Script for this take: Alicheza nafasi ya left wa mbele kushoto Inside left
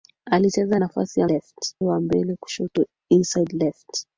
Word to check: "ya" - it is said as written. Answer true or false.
true